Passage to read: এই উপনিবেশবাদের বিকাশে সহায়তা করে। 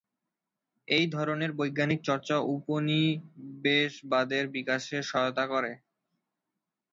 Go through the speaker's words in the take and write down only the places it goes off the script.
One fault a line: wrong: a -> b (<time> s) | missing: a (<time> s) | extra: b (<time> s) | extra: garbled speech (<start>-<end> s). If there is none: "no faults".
extra: ধরনের বৈজ্ঞানিক চর্চা (1.1 s)